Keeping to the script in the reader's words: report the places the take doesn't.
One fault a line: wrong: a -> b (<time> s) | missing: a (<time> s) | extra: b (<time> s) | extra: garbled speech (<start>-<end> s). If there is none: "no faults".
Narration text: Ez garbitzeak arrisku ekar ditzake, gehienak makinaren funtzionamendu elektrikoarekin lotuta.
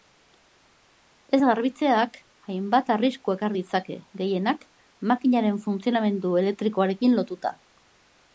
extra: hainbat (2.5 s)